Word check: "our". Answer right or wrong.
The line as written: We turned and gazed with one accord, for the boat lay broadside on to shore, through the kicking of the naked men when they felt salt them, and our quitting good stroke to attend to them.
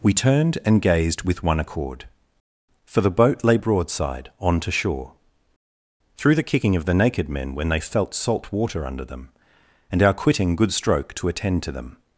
right